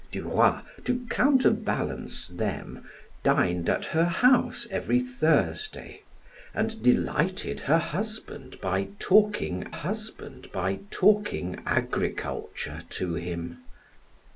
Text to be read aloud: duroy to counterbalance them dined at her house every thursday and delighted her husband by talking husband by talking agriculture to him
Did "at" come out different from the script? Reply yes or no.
no